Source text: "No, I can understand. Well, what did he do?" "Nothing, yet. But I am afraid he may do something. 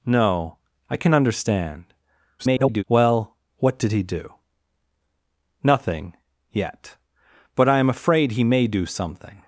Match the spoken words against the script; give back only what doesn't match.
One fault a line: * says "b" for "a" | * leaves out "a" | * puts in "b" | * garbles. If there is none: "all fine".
* garbles